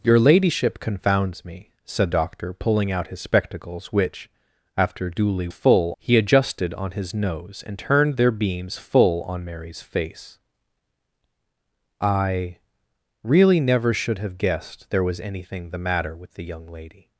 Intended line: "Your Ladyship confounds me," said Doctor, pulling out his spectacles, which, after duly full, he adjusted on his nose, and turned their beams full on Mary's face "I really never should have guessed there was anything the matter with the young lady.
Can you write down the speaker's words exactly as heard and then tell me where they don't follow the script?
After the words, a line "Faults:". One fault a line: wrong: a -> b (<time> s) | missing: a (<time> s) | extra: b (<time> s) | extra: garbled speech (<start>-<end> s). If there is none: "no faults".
"Your Ladyship confounds me," said Doctor, pulling out his spectacles, which, after duly full, he adjusted on his nose, and turned their beams full on Mary's face "I really never should have guessed there was anything the matter with the young lady.
Faults:
no faults